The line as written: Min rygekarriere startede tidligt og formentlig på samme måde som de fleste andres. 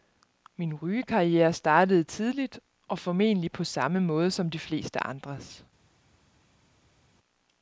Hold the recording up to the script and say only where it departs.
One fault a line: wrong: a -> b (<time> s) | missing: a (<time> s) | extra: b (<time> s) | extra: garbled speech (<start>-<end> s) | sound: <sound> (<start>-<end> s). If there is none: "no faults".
no faults